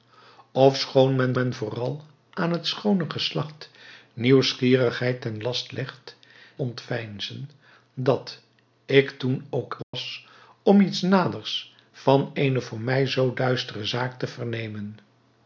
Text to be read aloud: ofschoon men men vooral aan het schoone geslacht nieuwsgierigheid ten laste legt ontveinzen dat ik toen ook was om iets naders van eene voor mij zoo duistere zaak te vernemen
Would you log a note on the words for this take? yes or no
no